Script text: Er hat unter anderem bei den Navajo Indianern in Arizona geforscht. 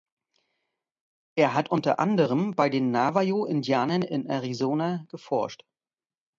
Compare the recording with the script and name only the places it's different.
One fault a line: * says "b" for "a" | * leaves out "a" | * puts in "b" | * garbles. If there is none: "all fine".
all fine